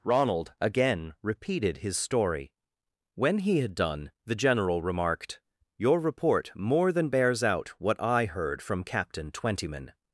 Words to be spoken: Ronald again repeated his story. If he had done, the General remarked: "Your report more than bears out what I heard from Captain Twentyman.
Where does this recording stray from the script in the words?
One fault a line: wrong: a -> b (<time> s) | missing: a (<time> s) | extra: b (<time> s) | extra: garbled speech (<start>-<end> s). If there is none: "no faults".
wrong: If -> When (3.1 s)